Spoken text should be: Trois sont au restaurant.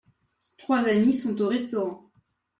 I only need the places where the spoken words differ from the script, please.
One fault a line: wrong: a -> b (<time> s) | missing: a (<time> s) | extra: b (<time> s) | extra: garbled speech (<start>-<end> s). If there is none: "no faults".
extra: amis (0.9 s)